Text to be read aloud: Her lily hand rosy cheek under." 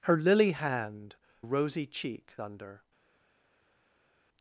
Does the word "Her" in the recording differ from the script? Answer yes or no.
no